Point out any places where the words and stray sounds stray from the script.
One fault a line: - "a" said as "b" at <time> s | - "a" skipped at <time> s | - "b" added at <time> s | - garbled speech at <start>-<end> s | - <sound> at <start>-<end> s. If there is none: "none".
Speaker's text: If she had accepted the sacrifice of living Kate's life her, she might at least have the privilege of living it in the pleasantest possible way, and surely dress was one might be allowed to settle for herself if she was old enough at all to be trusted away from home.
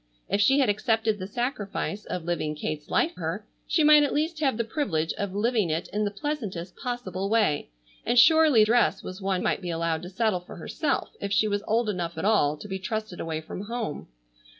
none